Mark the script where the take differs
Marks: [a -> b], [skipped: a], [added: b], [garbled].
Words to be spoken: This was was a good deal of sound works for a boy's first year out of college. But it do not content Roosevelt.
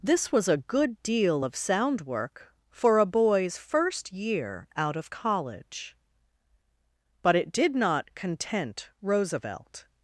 This was [skipped: was] a good deal of sound [works -> work] for a boy's first year out of college. But it [do -> did] not content Roosevelt.